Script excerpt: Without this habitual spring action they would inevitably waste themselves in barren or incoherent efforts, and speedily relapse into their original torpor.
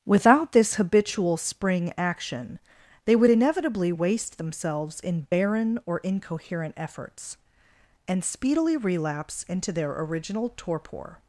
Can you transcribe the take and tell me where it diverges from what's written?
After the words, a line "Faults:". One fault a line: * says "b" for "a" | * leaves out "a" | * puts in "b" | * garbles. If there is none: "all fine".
Without this habitual spring action they would inevitably waste themselves in barren or incoherent efforts, and speedily relapse into their original torpor.
Faults:
all fine